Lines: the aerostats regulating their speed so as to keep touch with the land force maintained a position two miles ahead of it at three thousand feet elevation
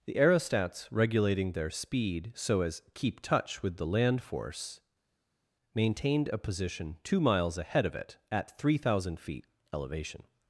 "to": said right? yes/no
no